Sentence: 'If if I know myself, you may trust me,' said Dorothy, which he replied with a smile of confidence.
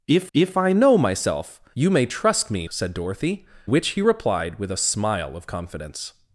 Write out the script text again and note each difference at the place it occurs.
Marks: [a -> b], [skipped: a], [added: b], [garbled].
'If if I know myself, you may trust me,' said Dorothy, which he replied with a smile of confidence.